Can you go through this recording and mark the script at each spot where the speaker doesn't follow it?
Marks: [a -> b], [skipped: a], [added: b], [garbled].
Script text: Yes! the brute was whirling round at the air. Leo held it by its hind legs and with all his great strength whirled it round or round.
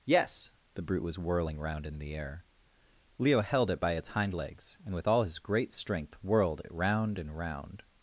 Yes! the brute was whirling round [at -> in] the air. Leo held it by its hind legs and with all his great strength whirled it round [or -> and] round.